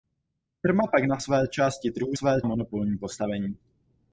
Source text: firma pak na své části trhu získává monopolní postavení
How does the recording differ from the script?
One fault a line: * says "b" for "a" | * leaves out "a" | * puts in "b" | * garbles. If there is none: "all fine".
* says "své" for "získává"